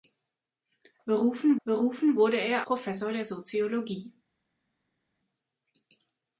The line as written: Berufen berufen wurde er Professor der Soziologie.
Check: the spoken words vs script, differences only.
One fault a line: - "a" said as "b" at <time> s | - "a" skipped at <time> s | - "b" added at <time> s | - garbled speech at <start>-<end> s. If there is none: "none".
none